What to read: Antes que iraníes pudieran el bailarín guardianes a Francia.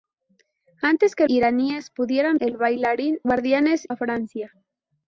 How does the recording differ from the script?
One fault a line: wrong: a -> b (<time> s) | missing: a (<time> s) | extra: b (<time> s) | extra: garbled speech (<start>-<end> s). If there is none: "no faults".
no faults